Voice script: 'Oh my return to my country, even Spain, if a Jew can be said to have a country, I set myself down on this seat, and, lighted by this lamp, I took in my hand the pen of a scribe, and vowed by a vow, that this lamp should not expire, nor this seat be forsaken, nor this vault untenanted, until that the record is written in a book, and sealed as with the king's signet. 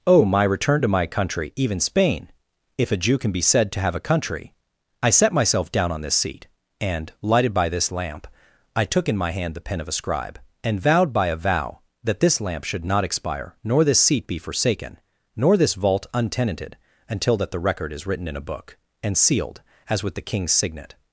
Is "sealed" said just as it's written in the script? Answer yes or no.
yes